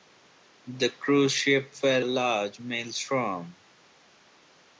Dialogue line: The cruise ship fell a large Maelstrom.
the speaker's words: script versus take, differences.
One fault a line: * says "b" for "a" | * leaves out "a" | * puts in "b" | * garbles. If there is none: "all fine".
all fine